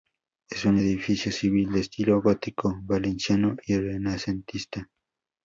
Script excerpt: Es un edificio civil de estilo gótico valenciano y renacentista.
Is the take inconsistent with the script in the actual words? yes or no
no